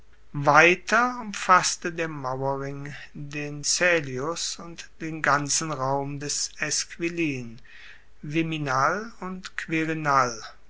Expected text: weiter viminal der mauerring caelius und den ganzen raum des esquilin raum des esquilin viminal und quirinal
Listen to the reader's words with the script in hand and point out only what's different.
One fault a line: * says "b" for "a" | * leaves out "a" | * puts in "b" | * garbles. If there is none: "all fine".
* says "umfasste" for "viminal"
* puts in "den"
* leaves out "raum des esquilin"